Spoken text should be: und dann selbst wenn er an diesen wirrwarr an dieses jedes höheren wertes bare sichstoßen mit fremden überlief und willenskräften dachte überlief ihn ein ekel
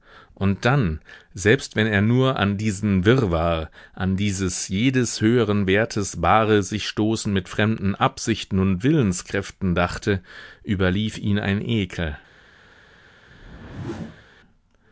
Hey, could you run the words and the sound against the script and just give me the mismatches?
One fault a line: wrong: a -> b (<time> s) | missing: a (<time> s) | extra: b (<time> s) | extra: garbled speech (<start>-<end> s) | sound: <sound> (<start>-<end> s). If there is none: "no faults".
extra: nur (2.0 s)
wrong: überlief -> absichten (7.9 s)
sound: whoosh (13.3-14.3 s)